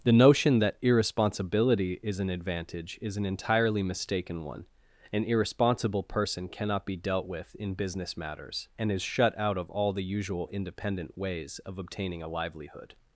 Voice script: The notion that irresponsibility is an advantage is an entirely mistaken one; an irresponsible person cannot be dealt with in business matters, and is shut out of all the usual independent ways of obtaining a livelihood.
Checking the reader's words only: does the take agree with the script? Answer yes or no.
yes